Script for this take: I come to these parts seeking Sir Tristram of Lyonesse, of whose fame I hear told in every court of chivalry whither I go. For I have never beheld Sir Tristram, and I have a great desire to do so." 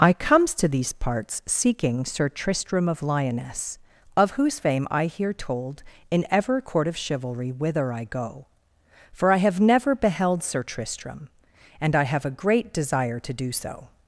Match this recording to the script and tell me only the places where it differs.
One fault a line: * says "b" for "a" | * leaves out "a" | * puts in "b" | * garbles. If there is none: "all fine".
* says "comes" for "come"
* says "ever" for "every"